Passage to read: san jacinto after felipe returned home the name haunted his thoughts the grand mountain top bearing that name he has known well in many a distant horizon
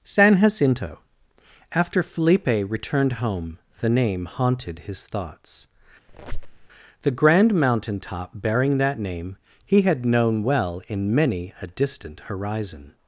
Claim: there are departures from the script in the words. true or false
true